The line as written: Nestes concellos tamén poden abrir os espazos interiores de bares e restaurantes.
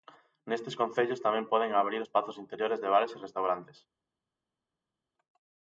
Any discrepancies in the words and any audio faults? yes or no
yes